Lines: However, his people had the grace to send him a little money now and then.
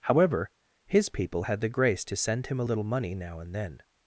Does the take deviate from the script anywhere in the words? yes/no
no